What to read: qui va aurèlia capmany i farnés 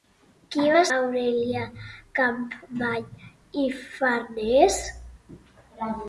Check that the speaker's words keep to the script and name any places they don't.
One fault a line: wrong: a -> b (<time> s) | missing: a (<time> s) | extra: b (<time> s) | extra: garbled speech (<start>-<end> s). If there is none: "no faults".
no faults